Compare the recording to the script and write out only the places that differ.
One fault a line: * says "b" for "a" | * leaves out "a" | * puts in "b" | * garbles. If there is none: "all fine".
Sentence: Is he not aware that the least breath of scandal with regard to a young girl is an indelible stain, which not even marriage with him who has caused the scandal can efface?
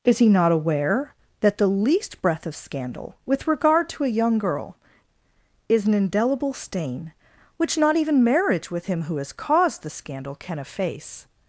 all fine